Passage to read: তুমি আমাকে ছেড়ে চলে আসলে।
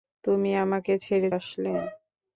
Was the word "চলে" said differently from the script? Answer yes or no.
yes